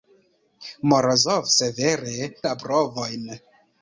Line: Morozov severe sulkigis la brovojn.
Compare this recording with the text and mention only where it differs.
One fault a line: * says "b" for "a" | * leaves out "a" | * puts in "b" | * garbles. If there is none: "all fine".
* leaves out "sulkigis"